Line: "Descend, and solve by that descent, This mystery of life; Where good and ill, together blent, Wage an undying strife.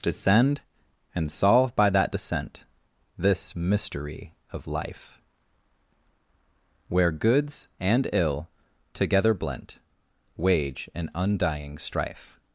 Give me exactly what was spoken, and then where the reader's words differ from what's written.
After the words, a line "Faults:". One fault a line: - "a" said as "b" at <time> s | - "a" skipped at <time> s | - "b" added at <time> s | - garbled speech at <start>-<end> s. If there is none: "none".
"Descend, and solve by that descent, This mystery of life; Where goods and ill, together blent, Wage an undying strife.
Faults:
- "good" said as "goods" at 7.1 s